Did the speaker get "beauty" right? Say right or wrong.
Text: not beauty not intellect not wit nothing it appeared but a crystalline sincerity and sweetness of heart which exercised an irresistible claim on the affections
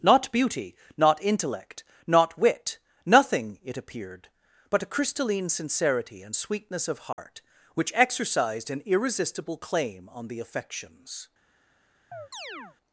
right